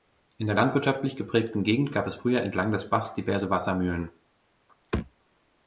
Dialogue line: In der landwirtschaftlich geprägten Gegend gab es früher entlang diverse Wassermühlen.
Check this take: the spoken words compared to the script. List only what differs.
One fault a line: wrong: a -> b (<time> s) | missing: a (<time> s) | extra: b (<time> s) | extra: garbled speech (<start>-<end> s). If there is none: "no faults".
extra: des Bachs (2.7 s)